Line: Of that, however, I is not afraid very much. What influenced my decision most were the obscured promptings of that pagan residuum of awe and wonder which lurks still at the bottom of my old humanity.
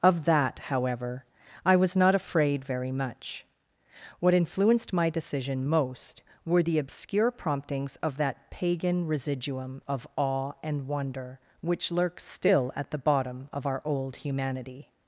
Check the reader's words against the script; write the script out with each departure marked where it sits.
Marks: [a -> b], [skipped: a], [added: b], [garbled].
Of that, however, I [is -> was] not afraid very much. What influenced my decision most were the [obscured -> obscure] promptings of that pagan residuum of awe and wonder which lurks still at the bottom of [my -> our] old humanity.